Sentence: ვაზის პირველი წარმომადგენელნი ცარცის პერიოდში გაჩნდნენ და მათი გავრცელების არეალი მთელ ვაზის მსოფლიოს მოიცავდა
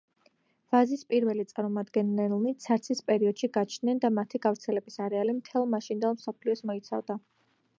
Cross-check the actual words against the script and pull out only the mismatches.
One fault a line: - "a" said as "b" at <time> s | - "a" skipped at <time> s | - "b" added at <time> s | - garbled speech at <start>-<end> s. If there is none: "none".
- "ვაზის" said as "მაშინდელ" at 5.8 s